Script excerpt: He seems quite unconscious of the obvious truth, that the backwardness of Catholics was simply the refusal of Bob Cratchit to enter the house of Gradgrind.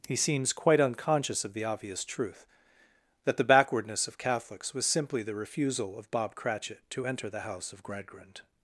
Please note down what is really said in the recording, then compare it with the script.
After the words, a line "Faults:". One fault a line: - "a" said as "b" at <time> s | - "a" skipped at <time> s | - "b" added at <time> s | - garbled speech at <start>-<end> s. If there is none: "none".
He seems quite unconscious of the obvious truth, that the backwardness of Catholics was simply the refusal of Bob Cratchit to enter the house of Gradgrind.
Faults:
none